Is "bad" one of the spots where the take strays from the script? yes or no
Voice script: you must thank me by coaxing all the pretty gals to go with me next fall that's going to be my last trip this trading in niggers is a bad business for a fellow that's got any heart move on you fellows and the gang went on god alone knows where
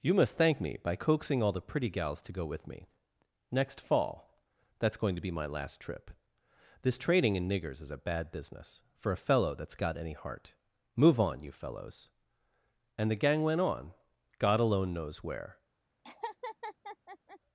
no